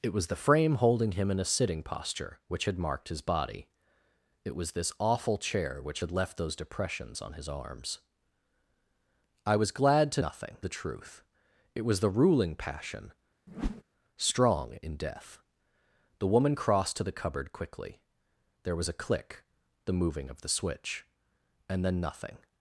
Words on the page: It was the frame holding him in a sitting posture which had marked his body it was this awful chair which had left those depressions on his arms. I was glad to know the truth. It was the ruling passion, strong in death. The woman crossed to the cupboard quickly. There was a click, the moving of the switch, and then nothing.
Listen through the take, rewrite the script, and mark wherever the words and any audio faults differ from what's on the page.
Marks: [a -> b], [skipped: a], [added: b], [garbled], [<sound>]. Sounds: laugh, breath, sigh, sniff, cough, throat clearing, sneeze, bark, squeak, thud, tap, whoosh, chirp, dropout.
It was the frame holding him in a sitting posture which had marked his body it was this awful chair which had left those depressions on his arms. I was glad to [know -> nothing] the truth. It was the ruling passion, [whoosh] strong in death. The woman crossed to the cupboard quickly. There was a click, the moving of the switch, and then nothing.